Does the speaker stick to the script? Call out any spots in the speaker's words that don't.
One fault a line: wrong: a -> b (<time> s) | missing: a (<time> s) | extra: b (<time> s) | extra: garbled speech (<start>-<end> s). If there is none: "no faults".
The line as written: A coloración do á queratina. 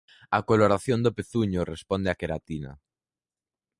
extra: pezuño responde (1.2 s)